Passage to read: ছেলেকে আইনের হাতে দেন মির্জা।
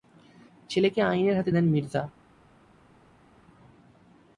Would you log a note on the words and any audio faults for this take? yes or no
no